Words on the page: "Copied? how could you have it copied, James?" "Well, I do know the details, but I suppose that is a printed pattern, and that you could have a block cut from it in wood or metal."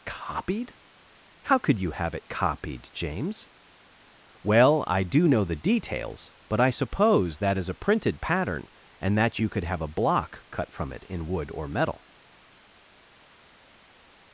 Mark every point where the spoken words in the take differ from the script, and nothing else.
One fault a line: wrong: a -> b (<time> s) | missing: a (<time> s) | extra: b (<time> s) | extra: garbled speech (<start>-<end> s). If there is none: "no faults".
no faults